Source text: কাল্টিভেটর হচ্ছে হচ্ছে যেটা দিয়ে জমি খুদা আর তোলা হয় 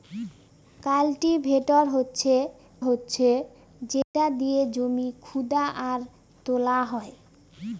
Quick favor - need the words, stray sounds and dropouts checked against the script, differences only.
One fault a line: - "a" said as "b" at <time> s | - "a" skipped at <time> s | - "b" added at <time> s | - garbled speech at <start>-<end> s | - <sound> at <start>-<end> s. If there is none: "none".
- dropout at 4.0-4.1 s